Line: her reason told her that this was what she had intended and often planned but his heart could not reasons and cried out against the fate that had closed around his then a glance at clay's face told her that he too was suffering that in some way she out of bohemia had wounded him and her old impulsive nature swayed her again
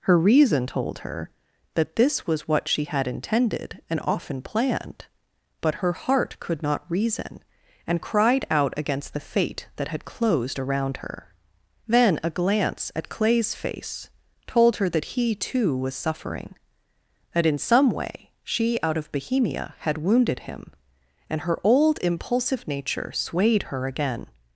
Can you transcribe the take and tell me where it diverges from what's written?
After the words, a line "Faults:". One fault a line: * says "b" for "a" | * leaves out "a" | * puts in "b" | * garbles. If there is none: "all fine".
her reason told her that this was what she had intended and often planned but her heart could not reason and cried out against the fate that had closed around her then a glance at clay's face told her that he too was suffering that in some way she out of bohemia had wounded him and her old impulsive nature swayed her again
Faults:
* says "her" for "his"
* says "reason" for "reasons"
* says "her" for "his"